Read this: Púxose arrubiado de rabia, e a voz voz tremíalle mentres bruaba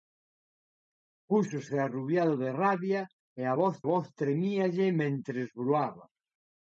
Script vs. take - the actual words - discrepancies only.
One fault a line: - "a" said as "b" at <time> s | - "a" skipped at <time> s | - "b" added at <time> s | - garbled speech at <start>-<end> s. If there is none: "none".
none